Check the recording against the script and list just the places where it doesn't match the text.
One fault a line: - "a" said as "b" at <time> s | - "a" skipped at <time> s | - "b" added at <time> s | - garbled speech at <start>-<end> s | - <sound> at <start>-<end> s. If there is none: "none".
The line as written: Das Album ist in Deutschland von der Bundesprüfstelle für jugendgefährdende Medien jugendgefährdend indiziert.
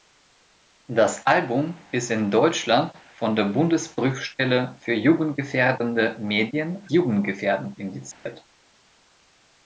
- dropout at 8.1-8.3 s